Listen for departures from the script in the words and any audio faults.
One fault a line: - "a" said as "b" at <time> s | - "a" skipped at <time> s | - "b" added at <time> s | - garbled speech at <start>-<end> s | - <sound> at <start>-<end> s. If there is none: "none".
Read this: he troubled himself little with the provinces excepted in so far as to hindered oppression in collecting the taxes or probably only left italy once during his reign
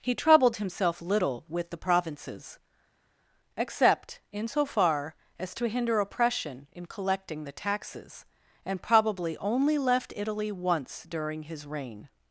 - "excepted" said as "except" at 3.6 s
- "hindered" said as "hinder" at 5.7 s
- "or" said as "and" at 8.6 s